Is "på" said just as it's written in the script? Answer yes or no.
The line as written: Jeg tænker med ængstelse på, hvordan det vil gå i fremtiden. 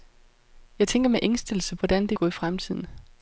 no